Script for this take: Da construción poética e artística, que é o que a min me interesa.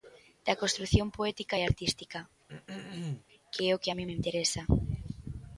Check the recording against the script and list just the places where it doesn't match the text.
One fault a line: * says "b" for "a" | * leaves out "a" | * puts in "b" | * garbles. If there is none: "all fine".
all fine